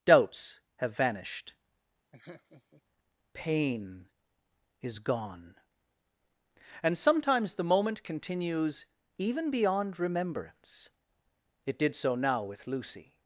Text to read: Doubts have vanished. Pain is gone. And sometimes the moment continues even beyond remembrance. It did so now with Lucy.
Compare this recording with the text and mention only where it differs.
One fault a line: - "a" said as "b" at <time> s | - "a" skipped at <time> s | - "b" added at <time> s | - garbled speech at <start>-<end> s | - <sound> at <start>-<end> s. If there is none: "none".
- laugh at 2.1-2.8 s